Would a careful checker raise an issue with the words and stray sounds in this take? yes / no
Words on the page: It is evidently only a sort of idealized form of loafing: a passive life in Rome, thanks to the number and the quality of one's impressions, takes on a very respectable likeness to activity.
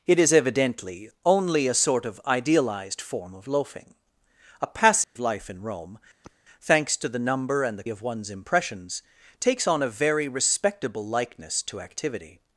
yes